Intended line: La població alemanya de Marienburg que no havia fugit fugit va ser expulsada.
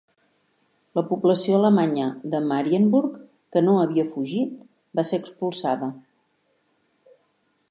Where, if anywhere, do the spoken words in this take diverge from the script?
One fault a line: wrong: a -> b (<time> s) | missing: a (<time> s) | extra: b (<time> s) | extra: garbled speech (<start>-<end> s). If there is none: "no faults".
missing: fugit (4.7 s)